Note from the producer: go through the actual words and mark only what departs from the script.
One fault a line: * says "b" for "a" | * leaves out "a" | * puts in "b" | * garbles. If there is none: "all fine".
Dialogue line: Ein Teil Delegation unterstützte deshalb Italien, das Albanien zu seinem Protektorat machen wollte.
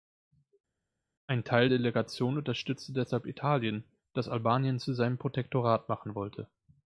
all fine